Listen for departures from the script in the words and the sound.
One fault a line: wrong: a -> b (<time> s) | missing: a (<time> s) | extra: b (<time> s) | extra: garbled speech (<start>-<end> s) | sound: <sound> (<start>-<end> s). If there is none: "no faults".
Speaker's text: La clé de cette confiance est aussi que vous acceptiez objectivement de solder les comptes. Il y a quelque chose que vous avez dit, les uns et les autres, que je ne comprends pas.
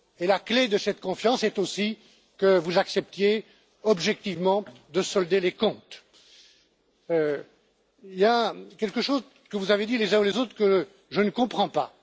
no faults